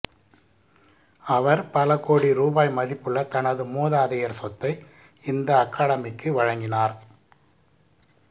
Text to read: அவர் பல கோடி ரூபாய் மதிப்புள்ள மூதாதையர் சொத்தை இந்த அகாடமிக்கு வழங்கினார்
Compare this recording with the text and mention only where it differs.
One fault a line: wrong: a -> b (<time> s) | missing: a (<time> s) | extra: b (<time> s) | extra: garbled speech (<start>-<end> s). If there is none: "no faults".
extra: தனது (3.2 s)